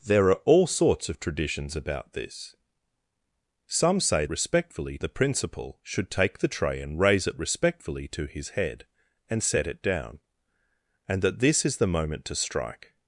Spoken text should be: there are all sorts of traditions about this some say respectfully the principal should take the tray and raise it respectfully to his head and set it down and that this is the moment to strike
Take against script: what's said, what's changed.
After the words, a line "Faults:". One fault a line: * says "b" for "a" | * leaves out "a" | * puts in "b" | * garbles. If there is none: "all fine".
there are all sorts of traditions about this some say respectfully the principal should take the tray and raise it respectfully to his head and set it down and that this is the moment to strike
Faults:
all fine